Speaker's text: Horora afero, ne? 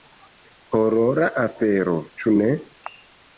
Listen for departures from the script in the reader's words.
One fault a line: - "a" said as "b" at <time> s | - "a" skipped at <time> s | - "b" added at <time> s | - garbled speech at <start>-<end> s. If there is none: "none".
- "ĉu" added at 2.2 s